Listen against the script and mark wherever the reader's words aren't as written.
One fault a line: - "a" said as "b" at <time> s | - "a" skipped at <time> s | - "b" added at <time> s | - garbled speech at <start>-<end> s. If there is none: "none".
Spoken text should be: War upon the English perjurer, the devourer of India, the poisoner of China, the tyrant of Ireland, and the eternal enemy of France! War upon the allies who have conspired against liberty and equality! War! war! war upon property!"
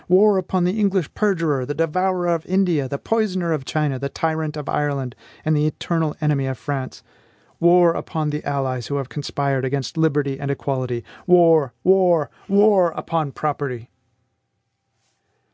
none